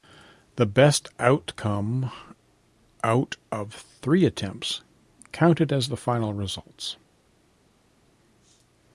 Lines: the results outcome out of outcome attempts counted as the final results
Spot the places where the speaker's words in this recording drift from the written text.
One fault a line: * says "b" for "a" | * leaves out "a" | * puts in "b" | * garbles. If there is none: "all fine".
* says "best" for "results"
* says "three" for "outcome"